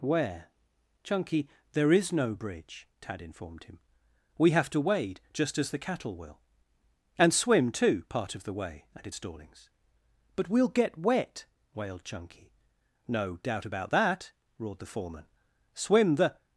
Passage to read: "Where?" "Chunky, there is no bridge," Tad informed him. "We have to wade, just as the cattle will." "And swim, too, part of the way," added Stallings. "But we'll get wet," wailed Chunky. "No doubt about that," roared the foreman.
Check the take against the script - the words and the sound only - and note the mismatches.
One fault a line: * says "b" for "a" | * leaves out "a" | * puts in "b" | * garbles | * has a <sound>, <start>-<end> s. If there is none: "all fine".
* puts in "Swim the"